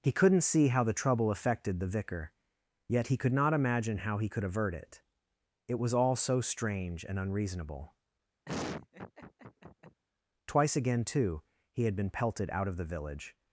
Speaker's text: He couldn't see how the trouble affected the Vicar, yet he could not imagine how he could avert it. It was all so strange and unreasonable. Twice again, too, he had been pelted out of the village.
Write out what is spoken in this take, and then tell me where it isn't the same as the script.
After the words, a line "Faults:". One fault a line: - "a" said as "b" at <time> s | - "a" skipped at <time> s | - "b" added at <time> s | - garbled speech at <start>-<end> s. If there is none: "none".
He couldn't see how the trouble affected the Vicar, yet he could not imagine how he could avert it. It was all so strange and unreasonable. Twice again, too, he had been pelted out of the village.
Faults:
none